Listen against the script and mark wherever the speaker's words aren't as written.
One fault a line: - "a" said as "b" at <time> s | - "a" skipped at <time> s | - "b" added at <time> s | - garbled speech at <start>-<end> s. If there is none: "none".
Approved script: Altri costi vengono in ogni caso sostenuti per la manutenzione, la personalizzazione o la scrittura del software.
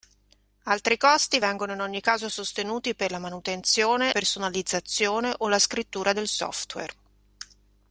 - "la" skipped at 4.1 s